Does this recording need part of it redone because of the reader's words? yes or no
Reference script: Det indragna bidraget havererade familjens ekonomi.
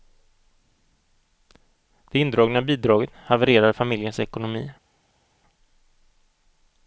no